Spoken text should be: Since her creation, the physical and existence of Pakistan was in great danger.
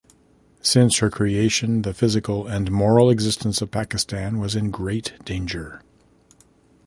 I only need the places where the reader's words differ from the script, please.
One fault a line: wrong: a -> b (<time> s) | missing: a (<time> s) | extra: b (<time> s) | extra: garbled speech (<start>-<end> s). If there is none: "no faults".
extra: moral (2.7 s)